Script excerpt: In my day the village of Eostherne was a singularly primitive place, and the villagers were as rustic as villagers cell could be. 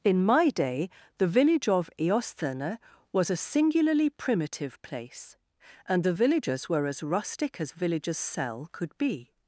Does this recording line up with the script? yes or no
yes